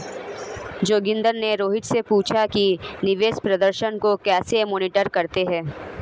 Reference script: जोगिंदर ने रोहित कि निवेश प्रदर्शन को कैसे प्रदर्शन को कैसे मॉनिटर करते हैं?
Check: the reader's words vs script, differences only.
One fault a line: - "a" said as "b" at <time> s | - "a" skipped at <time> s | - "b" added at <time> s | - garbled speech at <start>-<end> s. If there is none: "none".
- "से पूछा" added at 1.8 s
- "प्रदर्शन को कैसे" skipped at 4.6 s